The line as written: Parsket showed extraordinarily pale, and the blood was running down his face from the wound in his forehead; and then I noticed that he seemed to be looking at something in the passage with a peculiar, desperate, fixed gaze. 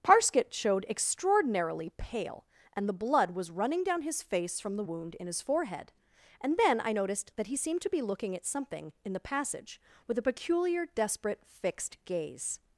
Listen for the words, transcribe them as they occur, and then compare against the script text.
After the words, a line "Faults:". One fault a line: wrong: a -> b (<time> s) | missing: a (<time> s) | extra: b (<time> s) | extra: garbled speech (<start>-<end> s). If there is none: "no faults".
Parsket showed extraordinarily pale, and the blood was running down his face from the wound in his forehead; and then I noticed that he seemed to be looking at something in the passage with a peculiar, desperate, fixed gaze.
Faults:
no faults